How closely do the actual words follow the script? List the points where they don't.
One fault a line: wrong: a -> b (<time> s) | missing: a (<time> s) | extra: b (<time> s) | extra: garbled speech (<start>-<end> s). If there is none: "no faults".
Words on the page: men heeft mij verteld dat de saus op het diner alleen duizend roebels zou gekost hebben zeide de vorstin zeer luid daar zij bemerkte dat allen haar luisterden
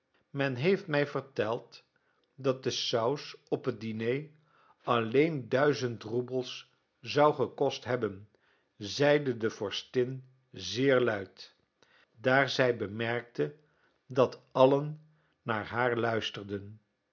extra: naar (15.4 s)